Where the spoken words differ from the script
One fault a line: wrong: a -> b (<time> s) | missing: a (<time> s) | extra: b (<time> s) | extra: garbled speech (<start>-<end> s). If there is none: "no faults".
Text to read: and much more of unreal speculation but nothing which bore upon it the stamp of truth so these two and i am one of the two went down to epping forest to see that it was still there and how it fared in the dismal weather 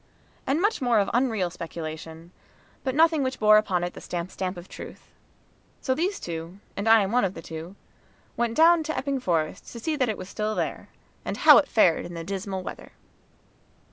extra: stamp (4.3 s)